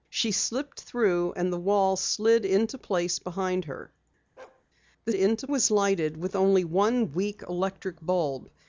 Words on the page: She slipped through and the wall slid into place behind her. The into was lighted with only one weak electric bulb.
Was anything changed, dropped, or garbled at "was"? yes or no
no